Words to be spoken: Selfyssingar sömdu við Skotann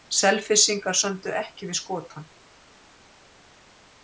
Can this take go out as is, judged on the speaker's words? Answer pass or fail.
fail